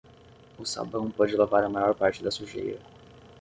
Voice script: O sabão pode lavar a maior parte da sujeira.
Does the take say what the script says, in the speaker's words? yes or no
yes